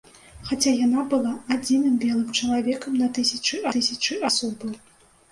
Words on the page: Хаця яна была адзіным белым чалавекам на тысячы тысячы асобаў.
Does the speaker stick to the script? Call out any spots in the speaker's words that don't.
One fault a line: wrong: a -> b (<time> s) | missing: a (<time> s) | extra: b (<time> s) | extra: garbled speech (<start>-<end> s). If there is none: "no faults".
no faults